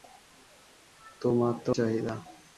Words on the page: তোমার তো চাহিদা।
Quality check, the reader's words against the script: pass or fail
pass